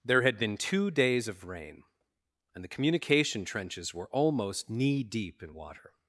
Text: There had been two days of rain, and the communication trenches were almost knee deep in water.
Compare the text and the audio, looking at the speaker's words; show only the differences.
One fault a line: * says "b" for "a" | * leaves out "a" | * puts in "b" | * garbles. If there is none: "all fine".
all fine